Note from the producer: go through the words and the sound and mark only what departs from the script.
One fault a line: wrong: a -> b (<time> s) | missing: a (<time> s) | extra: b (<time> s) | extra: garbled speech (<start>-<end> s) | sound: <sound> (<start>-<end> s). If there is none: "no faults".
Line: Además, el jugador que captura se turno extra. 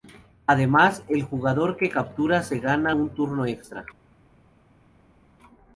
extra: gana un (2.6 s)